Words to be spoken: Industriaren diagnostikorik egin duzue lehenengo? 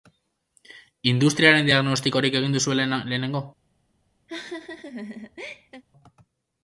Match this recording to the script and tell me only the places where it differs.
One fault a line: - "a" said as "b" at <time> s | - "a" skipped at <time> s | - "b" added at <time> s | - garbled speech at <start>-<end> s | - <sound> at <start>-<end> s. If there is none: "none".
- laugh at 4.3-5.8 s